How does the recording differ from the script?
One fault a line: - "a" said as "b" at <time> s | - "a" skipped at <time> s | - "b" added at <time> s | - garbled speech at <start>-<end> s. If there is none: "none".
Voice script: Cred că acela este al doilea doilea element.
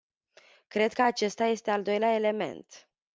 - "acela" said as "acesta" at 1.0 s
- "doilea" skipped at 2.1 s